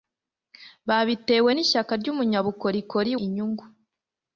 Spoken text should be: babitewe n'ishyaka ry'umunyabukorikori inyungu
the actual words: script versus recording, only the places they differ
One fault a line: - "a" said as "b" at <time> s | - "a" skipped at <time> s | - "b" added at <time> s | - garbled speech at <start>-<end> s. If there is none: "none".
none